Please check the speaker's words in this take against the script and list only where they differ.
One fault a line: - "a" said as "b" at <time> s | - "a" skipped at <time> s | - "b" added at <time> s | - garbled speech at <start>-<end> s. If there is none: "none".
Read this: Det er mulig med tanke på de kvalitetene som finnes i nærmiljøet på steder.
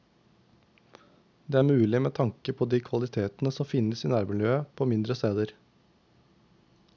- "mindre" added at 4.9 s